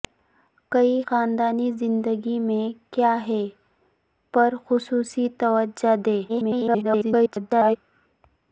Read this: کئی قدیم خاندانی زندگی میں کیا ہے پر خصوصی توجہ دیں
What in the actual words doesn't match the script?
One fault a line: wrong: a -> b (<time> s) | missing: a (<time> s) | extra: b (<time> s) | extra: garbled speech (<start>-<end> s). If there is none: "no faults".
missing: قدیم (1.0 s)
extra: garbled speech (6.3-7.8 s)